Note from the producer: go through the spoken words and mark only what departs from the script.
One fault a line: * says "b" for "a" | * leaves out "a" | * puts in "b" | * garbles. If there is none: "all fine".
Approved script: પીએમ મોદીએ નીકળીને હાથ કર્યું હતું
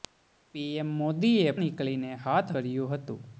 all fine